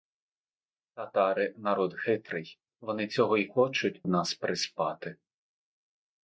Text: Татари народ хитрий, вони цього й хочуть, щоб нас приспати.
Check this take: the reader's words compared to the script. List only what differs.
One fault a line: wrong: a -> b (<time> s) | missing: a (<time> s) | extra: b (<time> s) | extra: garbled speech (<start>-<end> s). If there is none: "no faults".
missing: щоб (4.0 s)